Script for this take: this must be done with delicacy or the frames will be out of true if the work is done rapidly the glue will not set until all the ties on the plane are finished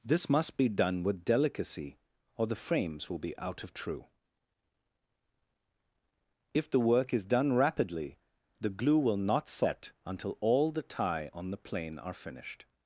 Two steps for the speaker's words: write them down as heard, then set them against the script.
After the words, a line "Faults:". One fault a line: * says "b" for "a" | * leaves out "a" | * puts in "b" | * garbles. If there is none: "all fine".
this must be done with delicacy or the frames will be out of true if the work is done rapidly the glue will not set until all the tie on the plane are finished
Faults:
* says "tie" for "ties"